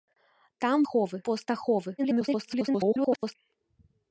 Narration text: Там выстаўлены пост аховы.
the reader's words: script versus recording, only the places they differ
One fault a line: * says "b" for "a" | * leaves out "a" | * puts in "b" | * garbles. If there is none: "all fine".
* says "аховы" for "выстаўлены"
* garbles